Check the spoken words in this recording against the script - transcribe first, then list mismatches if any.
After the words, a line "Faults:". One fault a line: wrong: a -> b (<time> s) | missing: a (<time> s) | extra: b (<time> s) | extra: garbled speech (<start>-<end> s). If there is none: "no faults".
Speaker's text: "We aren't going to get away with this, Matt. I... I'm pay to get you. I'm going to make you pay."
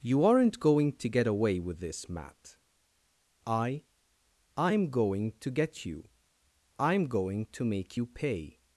"You aren't going to get away with this, Matt. I... I'm going to get you. I'm going to make you pay."
Faults:
wrong: We -> You (0.0 s)
wrong: pay -> going (4.9 s)